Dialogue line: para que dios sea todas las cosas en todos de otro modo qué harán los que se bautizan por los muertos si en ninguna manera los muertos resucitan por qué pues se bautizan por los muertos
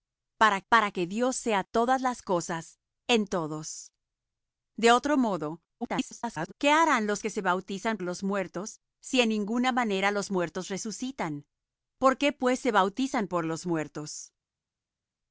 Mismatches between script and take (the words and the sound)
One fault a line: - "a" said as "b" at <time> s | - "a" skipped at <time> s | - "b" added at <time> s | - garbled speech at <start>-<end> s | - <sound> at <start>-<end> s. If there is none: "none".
- "para" added at 0.7 s
- garbled speech at 5.8-6.5 s
- "por" skipped at 8.0 s